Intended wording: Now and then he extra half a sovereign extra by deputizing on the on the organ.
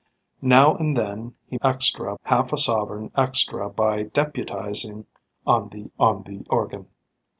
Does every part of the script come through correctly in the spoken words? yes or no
yes